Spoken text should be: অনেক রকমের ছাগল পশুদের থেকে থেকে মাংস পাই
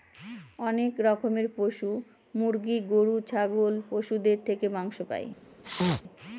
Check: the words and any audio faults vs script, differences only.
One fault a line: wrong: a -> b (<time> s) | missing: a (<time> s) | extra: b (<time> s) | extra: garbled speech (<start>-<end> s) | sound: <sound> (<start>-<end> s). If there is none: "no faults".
extra: পশু মুরগি গরু (1.6 s)
missing: থেকে (4.7 s)
sound: sneeze (5.6-6.0 s)